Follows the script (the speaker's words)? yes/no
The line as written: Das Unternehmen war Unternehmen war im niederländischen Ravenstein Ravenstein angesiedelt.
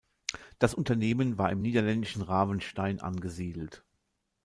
no